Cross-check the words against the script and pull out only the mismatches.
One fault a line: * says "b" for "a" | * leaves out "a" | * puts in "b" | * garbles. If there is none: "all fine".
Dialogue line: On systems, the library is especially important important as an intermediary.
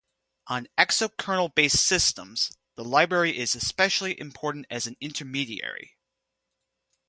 * puts in "exokernel based"
* leaves out "important"